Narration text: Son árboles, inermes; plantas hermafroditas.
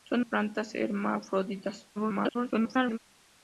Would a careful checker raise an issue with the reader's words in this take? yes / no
yes